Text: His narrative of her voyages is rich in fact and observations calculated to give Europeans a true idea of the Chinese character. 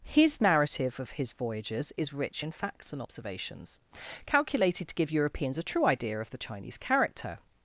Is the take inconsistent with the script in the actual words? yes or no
yes